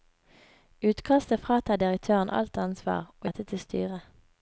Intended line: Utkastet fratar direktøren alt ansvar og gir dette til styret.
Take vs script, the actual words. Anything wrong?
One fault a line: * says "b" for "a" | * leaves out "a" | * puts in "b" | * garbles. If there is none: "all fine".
* leaves out "gir"